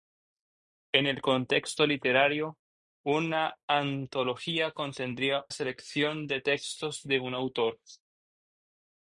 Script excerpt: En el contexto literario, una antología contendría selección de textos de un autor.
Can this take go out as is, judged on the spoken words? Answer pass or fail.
pass